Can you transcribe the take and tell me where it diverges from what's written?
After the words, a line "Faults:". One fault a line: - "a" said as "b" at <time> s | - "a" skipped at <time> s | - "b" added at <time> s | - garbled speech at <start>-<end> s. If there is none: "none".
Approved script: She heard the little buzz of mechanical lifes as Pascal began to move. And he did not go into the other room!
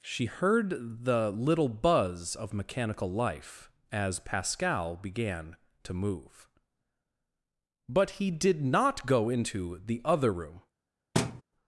She heard the little buzz of mechanical life as Pascal began to move. But he did not go into the other room!
Faults:
- "lifes" said as "life" at 3.1 s
- "And" said as "But" at 7.9 s